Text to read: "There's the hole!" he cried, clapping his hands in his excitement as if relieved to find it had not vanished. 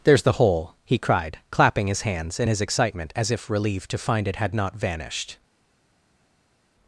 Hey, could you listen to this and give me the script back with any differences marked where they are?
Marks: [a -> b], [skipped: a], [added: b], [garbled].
"There's the hole!" he cried, clapping his hands in his excitement as if relieved to find it had not vanished.